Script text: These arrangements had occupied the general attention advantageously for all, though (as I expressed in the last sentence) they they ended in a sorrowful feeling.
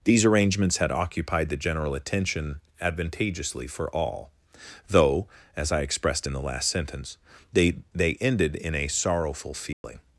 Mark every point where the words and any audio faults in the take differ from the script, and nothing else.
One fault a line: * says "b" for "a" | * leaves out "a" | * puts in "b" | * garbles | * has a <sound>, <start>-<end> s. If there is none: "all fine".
* has a dropout, 9.7-9.8 s